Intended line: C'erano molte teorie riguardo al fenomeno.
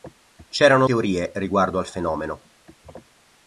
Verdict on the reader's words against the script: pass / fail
fail